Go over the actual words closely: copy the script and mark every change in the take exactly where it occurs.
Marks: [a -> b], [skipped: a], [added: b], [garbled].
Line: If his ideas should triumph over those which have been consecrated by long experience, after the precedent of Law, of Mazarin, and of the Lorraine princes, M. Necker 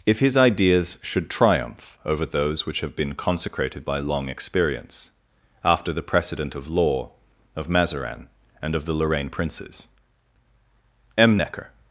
If his ideas should triumph over those which have been consecrated by long experience, after the precedent of Law, of Mazarin, and of the Lorraine princes, M. Necker